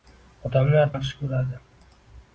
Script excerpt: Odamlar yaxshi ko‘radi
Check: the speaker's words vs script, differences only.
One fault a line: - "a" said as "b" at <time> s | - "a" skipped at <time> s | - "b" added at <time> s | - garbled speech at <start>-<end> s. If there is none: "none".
none